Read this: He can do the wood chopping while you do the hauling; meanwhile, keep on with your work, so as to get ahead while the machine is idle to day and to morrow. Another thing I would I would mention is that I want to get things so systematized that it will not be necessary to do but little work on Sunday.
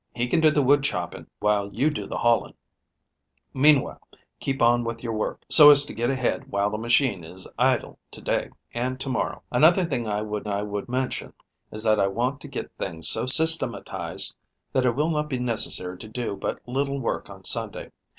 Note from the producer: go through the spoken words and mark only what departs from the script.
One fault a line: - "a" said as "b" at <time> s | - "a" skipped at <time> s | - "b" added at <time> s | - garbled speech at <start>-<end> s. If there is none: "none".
none